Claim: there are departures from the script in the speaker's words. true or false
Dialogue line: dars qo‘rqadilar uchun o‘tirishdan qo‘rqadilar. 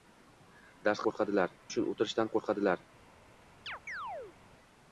false